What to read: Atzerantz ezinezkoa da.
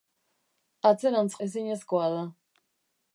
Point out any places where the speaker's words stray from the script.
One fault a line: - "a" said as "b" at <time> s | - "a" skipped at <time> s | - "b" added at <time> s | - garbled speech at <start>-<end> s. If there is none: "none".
none